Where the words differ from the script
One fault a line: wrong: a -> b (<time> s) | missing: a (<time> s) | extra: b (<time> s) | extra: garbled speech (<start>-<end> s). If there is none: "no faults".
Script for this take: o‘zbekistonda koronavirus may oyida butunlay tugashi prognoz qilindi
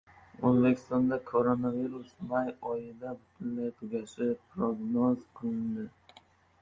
no faults